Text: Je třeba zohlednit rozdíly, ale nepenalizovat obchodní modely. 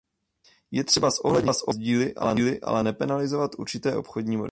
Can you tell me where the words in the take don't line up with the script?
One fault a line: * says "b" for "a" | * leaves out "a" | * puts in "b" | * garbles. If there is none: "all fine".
* puts in "určité"